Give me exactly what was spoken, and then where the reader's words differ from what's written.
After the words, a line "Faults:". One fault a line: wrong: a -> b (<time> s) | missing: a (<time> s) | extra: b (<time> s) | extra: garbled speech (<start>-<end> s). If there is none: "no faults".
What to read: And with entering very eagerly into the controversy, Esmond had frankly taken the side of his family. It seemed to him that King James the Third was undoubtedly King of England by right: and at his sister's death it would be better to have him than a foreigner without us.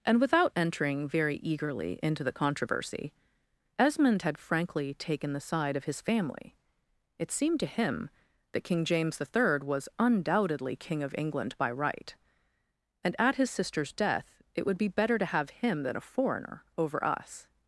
And without entering very eagerly into the controversy, Esmond had frankly taken the side of his family. It seemed to him that King James the Third was undoubtedly King of England by right: and at his sister's death it would be better to have him than a foreigner over us.
Faults:
wrong: with -> without (0.2 s)
wrong: without -> over (16.8 s)